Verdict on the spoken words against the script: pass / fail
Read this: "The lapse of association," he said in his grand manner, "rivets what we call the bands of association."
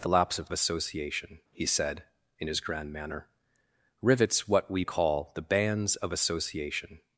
pass